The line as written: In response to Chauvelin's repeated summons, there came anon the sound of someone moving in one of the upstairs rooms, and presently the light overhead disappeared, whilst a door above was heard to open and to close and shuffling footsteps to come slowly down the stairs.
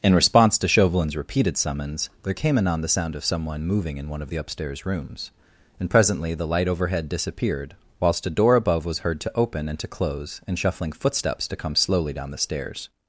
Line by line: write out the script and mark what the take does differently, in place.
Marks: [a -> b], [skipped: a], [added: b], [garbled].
In response to Chauvelin's repeated summons, there came anon the sound of someone moving in one of the upstairs rooms, and presently the light overhead disappeared, whilst a door above was heard to open and to close and shuffling footsteps to come slowly down the stairs.